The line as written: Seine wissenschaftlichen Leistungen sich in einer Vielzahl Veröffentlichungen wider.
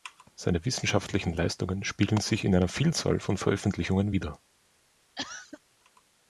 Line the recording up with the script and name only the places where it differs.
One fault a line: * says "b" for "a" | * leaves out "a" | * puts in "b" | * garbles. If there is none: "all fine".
* puts in "spiegeln"
* puts in "von"